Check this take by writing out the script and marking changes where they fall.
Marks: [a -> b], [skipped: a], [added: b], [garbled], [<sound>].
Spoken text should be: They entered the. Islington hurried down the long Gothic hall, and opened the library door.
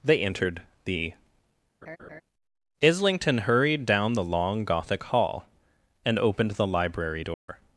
They entered the. [laugh] Islington hurried down the long Gothic hall, and opened the library door. [dropout]